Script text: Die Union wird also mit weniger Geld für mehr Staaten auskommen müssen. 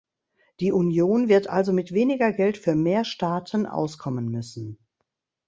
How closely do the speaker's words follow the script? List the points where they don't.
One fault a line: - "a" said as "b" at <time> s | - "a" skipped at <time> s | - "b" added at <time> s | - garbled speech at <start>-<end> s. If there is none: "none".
none